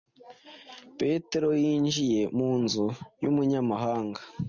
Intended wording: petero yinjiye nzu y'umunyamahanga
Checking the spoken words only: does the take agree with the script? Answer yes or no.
no